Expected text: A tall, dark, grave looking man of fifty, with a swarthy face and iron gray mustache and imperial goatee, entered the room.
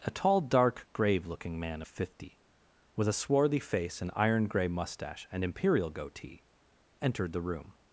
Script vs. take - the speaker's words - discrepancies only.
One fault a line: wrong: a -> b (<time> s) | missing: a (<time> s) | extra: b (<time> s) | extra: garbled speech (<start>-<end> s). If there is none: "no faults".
no faults